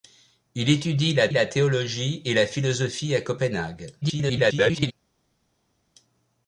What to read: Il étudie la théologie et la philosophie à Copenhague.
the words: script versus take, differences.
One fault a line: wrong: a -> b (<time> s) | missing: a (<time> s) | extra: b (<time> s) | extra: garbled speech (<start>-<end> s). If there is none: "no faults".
extra: la (1.3 s)
extra: garbled speech (4.0-4.9 s)